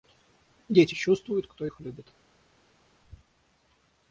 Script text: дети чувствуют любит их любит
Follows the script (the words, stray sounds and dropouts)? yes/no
no